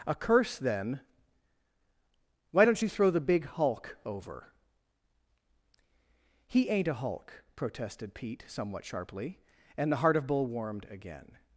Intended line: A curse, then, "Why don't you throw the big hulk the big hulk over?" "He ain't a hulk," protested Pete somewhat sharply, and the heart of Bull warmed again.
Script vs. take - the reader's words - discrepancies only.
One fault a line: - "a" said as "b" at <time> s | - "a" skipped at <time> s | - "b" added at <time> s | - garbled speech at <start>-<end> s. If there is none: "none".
- "the big hulk" skipped at 4.0 s